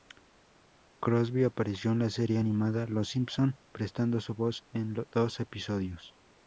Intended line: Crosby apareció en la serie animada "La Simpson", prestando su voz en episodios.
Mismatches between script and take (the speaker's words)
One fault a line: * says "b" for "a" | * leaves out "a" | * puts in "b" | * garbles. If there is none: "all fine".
* says "Los" for "La"
* puts in "dos"